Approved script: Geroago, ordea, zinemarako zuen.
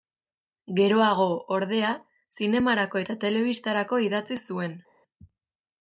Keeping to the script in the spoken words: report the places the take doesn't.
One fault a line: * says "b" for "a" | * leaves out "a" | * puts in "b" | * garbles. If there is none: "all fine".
* puts in "eta telebistarako idatzi"